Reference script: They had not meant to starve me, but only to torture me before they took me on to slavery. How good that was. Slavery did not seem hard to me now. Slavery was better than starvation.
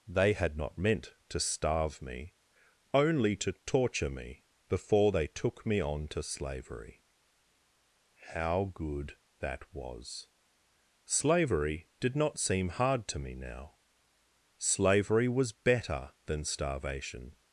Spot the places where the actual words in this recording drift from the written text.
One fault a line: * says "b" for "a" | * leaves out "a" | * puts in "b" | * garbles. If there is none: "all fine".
* leaves out "but"